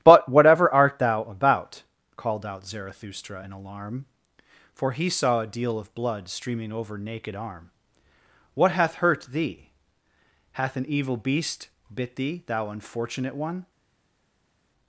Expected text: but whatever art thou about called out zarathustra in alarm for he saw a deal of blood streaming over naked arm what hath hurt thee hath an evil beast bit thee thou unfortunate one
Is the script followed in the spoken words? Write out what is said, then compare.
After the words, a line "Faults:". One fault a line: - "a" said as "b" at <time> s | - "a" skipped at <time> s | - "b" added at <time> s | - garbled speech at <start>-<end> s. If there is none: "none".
but whatever art thou about called out zarathustra in alarm for he saw a deal of blood streaming over naked arm what hath hurt thee hath an evil beast bit thee thou unfortunate one
Faults:
none